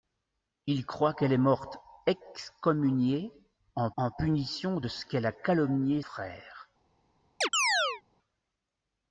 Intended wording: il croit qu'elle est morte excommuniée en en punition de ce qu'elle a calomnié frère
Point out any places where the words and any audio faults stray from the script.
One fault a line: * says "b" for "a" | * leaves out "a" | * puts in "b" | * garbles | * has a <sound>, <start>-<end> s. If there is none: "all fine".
* has a chirp, 7.4-8.0 s